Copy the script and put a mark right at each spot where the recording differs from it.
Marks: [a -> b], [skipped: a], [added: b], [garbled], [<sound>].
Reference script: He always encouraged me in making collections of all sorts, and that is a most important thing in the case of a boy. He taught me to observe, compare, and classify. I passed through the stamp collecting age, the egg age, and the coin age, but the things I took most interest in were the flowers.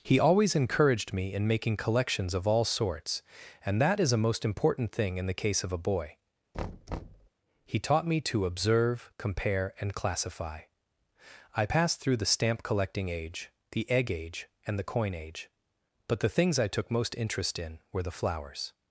He always encouraged me in making collections of all sorts, and that is a most important thing in the case of a boy. [thud] He taught me to observe, compare, and classify. I passed through the stamp collecting age, the egg age, and the coin age, but the things I took most interest in were the flowers.